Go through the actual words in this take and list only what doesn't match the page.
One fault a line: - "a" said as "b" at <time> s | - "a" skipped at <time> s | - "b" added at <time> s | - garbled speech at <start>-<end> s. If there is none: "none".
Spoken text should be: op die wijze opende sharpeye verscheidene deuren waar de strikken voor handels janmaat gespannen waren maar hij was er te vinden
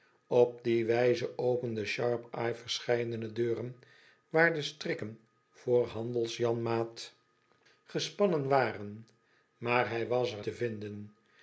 none